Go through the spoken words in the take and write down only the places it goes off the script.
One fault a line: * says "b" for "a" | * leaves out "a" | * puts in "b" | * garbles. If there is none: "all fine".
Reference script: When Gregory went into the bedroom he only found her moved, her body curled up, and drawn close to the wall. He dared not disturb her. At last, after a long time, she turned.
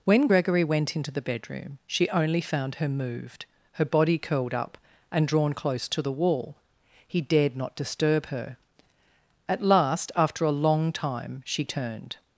* says "she" for "he"